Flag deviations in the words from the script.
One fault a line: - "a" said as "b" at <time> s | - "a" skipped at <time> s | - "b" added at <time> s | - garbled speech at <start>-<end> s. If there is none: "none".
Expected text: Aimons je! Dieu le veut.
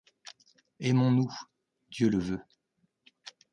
- "je" said as "nous" at 1.1 s